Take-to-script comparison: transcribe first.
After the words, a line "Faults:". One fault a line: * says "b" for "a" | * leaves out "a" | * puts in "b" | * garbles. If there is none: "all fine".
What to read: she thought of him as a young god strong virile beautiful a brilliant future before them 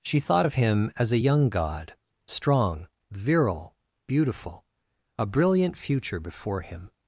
she thought of him as a young god strong virile beautiful a brilliant future before him
Faults:
* says "him" for "them"